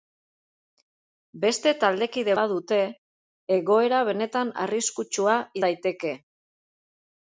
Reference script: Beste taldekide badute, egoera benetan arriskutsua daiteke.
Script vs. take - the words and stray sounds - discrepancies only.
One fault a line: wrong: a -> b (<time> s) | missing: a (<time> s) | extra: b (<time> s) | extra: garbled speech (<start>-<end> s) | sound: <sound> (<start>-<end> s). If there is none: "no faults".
no faults